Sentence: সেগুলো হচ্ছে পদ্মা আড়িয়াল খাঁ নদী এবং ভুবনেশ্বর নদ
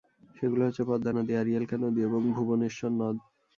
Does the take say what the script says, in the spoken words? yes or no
no